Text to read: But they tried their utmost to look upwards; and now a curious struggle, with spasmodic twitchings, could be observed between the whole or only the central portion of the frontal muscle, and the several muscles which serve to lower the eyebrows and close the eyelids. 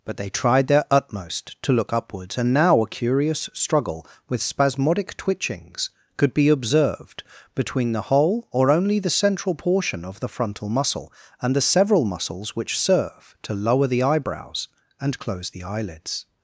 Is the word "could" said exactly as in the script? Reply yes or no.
yes